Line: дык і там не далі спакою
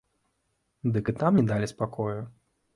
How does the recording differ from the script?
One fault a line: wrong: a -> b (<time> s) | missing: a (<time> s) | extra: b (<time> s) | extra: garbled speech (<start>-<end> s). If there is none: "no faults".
no faults